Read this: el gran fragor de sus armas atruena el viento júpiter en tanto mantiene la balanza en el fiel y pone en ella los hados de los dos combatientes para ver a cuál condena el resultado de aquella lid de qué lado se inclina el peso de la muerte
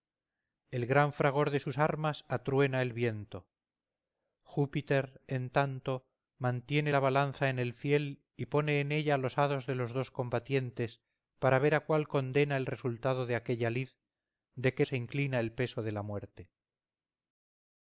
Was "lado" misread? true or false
true